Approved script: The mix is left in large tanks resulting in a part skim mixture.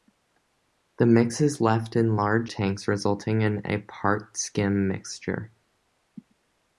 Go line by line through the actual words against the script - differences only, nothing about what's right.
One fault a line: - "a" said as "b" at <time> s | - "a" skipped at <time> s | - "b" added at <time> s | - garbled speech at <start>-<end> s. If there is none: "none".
none